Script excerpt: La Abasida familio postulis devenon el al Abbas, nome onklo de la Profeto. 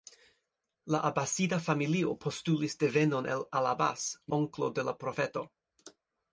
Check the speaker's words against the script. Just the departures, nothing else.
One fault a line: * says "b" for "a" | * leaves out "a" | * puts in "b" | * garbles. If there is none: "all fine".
* leaves out "nome"